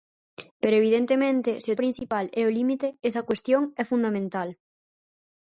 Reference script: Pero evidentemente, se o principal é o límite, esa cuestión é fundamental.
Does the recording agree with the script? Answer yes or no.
yes